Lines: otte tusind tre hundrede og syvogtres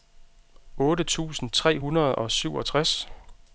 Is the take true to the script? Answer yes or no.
yes